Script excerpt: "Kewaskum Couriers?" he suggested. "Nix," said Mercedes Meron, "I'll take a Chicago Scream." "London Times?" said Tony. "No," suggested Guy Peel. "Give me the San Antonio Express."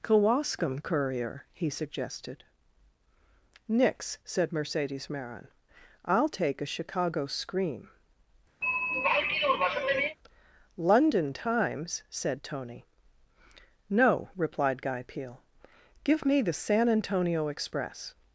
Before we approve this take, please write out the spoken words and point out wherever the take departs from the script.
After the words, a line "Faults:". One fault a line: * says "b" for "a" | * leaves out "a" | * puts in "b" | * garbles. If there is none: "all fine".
"Kewaskum Courier?" he suggested. "Nix," said Mercedes Meron, "I'll take a Chicago Scream." "London Times?" said Tony. "No," replied Guy Peel. "Give me the San Antonio Express."
Faults:
* says "Courier" for "Couriers"
* says "replied" for "suggested"